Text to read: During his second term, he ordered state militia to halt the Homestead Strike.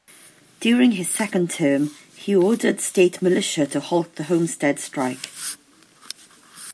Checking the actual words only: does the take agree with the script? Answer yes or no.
yes